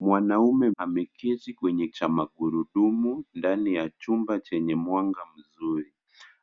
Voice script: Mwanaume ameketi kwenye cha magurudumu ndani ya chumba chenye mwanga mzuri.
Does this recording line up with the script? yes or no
yes